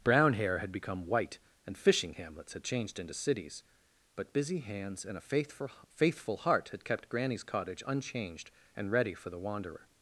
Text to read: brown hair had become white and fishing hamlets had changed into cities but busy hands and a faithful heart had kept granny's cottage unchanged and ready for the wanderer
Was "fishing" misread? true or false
false